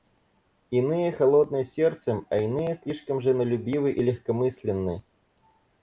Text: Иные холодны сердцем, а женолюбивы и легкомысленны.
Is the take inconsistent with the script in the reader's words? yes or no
yes